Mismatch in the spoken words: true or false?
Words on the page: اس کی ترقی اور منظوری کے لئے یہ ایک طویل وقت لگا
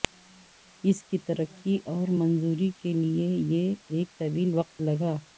false